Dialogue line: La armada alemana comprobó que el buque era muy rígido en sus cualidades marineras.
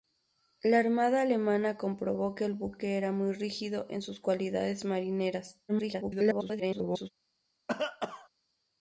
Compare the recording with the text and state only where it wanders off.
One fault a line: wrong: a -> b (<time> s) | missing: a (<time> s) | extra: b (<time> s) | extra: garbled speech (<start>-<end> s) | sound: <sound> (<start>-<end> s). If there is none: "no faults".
extra: garbled speech (5.7-7.1 s)
sound: cough (7.7-8.3 s)